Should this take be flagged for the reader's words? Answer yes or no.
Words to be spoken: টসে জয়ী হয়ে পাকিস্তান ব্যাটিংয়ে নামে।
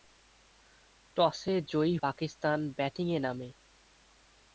yes